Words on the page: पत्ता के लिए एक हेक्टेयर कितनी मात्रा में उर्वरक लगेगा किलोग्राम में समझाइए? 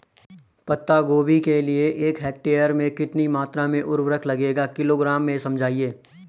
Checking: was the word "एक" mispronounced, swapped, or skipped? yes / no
no